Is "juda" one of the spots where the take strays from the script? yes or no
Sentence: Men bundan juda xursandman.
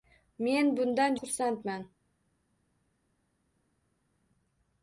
yes